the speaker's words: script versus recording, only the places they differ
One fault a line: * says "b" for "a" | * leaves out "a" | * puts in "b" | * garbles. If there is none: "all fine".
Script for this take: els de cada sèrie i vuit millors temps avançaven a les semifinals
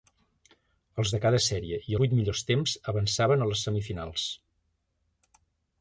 all fine